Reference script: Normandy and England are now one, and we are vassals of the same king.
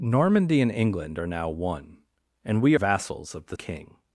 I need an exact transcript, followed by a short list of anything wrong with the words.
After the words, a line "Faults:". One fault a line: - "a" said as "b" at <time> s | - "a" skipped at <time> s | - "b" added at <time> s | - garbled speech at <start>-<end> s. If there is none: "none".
Normandy and England are now one, and we vassals of the king.
Faults:
- "are" skipped at 2.8 s
- "same" skipped at 3.6 s